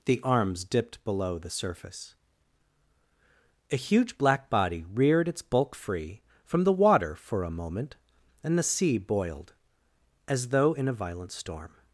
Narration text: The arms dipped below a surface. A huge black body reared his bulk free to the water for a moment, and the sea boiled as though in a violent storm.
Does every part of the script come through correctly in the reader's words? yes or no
no